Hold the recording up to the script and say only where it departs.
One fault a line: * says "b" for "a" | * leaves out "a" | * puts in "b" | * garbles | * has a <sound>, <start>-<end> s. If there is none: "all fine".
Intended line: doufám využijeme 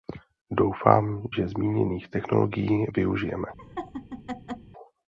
* puts in "že zmíněných technologií"
* has a laugh, 3.6-4.7 s